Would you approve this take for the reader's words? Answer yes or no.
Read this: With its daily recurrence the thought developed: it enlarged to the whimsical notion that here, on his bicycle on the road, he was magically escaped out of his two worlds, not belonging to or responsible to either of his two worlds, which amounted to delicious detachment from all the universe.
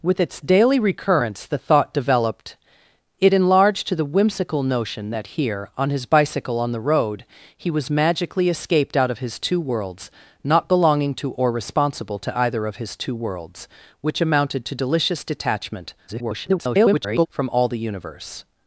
no